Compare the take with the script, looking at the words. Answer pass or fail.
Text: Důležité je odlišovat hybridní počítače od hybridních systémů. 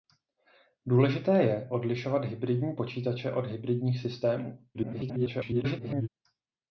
fail